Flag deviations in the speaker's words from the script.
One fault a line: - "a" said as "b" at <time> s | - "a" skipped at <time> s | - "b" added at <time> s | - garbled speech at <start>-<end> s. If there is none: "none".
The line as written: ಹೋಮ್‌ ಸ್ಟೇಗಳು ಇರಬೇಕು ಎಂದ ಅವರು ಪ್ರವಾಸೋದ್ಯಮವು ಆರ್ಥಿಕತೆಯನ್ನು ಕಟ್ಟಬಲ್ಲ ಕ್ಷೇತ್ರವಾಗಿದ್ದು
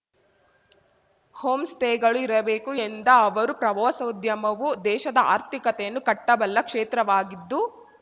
- "ದೇಶದ" added at 4.8 s